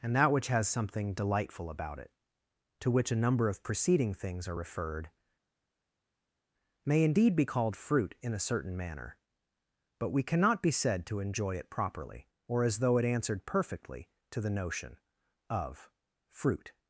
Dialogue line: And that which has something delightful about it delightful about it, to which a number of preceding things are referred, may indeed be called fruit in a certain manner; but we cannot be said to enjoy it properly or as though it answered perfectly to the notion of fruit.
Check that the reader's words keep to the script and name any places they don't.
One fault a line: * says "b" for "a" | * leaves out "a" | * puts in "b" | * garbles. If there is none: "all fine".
* leaves out "delightful about it"